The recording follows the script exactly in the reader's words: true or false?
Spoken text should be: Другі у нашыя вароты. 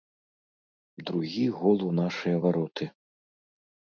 false